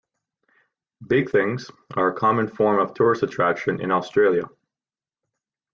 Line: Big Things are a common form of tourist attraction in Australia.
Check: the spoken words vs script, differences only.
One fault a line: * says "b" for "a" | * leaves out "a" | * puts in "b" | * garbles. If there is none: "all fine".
all fine